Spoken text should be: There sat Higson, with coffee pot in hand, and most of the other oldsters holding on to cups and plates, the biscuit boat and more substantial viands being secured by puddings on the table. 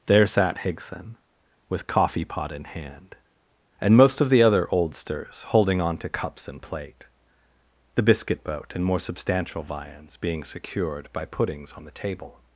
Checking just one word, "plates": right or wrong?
wrong